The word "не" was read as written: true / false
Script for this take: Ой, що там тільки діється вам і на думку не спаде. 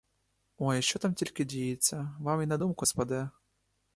false